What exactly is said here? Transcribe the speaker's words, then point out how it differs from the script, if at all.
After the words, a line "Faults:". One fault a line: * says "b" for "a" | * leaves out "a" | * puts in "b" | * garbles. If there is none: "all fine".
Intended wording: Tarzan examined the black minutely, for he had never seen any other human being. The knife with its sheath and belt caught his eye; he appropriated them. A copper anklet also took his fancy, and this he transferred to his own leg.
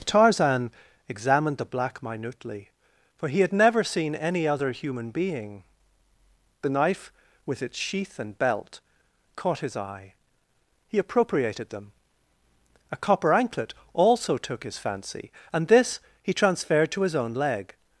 Tarzan examined the black minutely, for he had never seen any other human being. The knife with its sheath and belt caught his eye; he appropriated them. A copper anklet also took his fancy, and this he transferred to his own leg.
Faults:
all fine